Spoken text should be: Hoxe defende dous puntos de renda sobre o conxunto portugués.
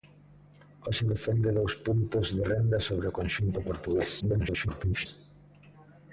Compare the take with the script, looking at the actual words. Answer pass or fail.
fail